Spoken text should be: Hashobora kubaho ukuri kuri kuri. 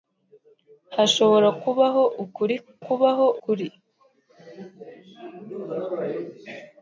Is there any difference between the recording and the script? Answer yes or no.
yes